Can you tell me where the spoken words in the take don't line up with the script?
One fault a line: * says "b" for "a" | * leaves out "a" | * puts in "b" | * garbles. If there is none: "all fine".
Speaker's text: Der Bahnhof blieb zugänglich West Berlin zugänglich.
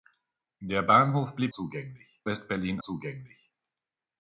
all fine